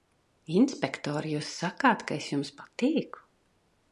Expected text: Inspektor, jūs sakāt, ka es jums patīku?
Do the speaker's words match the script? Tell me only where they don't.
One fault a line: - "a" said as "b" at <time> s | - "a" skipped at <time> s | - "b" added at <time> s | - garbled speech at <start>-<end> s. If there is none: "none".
none